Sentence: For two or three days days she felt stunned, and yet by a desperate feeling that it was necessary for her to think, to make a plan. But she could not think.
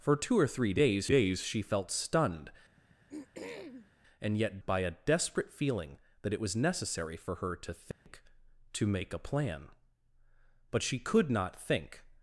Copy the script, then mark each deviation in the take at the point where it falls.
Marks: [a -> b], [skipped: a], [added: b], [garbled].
For two or three days days she felt stunned, and yet by a desperate feeling that it was necessary for her to think, to make a plan. But she could not think.